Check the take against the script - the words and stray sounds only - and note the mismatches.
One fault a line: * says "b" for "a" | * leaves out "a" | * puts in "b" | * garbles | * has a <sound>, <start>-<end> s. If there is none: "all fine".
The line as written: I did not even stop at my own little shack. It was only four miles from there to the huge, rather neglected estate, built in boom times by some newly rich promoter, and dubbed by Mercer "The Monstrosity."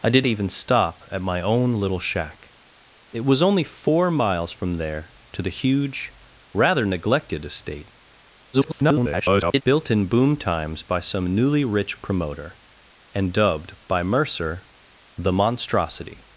* leaves out "not"
* garbles